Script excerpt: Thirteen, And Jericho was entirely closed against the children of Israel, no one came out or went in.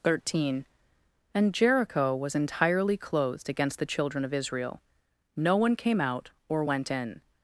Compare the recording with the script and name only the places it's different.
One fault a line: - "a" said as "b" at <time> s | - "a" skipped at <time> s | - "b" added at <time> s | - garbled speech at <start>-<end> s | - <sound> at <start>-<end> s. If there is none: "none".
none